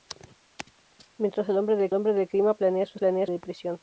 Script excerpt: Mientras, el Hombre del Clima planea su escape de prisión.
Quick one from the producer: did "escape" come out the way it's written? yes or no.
no